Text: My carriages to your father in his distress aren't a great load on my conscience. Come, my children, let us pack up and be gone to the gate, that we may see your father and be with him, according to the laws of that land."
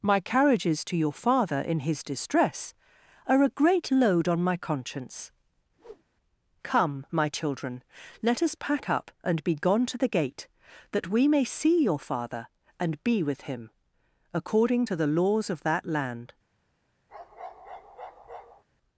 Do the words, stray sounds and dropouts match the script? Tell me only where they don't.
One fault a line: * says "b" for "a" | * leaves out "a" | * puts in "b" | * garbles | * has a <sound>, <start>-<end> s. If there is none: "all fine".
* says "are" for "aren't"
* has a whoosh, 5.8-6.0 s
* has a bark, 17.1-18.6 s